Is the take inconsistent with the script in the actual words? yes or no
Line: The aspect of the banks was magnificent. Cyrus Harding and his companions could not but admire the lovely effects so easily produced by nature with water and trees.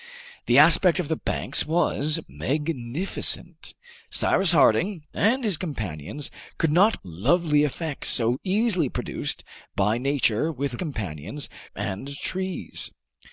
yes